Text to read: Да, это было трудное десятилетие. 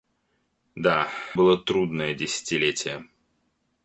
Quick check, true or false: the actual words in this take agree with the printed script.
false